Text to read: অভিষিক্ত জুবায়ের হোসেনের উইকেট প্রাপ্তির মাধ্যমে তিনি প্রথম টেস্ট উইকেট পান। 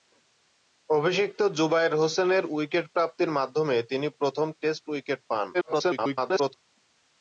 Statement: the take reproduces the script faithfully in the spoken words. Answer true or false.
false